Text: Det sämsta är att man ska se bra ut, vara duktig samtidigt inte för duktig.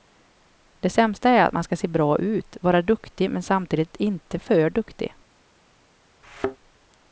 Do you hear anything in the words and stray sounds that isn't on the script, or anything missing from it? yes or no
yes